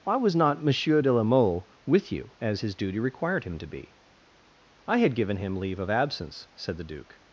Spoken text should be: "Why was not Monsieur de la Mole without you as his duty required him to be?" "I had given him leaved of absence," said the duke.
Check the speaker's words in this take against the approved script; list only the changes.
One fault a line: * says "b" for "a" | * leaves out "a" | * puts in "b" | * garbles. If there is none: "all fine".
* says "with" for "without"
* says "leave" for "leaved"